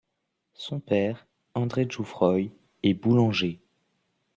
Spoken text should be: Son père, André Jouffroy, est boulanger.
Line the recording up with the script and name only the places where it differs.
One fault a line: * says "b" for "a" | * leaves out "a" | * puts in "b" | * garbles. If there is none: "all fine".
all fine